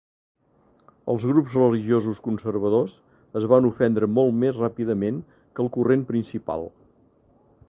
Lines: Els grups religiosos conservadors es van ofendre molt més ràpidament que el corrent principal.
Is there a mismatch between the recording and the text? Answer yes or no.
no